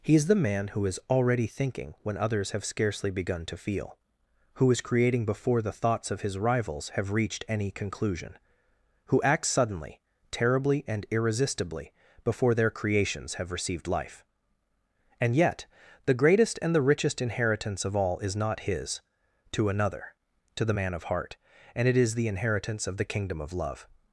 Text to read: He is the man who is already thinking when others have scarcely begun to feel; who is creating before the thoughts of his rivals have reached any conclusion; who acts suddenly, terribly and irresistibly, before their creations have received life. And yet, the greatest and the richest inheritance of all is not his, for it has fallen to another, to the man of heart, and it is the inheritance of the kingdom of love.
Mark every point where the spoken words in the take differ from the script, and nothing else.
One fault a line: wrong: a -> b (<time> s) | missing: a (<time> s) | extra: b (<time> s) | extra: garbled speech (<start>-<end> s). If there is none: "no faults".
missing: for it has fallen (19.0 s)